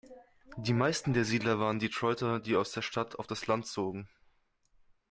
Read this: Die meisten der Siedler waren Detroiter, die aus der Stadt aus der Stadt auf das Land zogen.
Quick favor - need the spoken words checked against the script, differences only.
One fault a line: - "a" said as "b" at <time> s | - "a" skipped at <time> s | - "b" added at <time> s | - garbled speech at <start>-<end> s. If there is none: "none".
- "aus der Stadt" skipped at 3.2 s